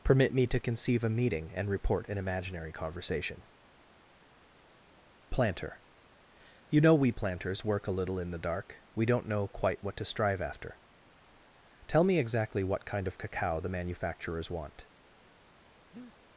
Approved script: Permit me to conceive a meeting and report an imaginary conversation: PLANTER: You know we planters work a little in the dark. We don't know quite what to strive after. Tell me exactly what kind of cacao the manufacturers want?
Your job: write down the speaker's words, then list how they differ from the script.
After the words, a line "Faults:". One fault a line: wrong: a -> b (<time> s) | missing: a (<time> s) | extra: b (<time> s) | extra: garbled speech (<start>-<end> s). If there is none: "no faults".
Permit me to conceive a meeting and report an imaginary conversation: PLANTER: You know we planters work a little in the dark. We don't know quite what to strive after. Tell me exactly what kind of cacao the manufacturers want?
Faults:
no faults